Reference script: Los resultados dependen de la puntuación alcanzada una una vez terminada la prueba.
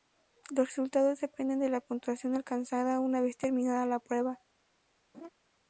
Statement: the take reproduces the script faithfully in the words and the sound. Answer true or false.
false